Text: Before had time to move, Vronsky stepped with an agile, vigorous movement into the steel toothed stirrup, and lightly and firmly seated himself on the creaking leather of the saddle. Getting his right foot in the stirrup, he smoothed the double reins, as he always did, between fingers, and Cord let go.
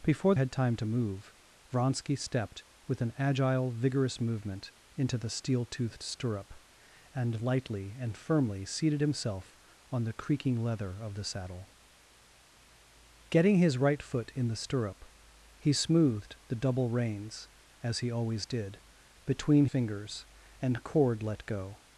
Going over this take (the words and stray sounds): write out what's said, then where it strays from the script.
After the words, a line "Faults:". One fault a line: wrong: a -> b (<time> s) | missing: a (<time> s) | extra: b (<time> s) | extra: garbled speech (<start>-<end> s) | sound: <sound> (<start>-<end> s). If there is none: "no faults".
Before had time to move, Vronsky stepped with an agile, vigorous movement into the steel toothed stirrup, and lightly and firmly seated himself on the creaking leather of the saddle. Getting his right foot in the stirrup, he smoothed the double reins, as he always did, between fingers, and Cord let go.
Faults:
no faults